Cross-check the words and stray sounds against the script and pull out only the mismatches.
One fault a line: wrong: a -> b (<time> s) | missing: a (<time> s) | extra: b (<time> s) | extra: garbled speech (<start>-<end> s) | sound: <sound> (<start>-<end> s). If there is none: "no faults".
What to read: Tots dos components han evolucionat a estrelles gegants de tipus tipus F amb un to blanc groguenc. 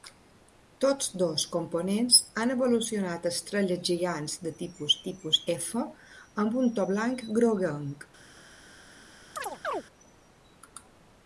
sound: chirp (9.4-9.8 s)